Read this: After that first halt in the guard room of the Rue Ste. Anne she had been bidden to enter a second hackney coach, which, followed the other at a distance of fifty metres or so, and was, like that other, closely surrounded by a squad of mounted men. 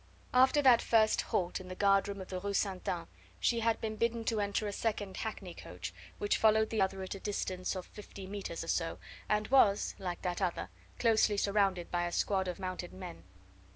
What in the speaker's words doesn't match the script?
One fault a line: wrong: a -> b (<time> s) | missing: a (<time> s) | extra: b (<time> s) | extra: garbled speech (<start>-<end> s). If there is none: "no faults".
no faults